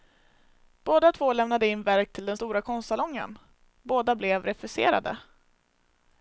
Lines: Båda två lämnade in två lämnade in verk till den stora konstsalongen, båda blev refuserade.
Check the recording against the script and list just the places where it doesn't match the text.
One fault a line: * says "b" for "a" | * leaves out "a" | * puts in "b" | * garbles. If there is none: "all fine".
* leaves out "två lämnade in"